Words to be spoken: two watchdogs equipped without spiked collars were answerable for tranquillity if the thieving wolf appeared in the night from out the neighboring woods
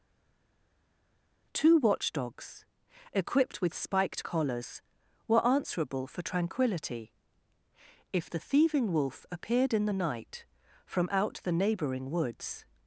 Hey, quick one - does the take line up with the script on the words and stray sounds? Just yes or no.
no